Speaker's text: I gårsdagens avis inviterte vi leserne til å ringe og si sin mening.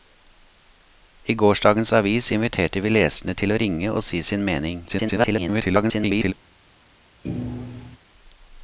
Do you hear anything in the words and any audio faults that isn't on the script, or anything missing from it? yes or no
yes